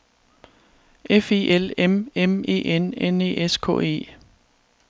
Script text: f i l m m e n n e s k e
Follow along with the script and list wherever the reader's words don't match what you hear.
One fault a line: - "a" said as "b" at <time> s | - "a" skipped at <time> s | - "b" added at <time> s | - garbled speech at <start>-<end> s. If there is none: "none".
none